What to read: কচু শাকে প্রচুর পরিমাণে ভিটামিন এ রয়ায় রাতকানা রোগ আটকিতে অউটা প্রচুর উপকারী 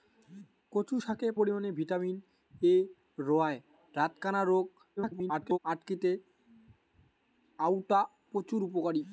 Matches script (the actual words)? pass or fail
fail